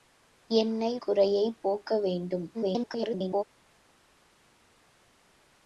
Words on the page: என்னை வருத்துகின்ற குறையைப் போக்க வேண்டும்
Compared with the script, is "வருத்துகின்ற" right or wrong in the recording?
wrong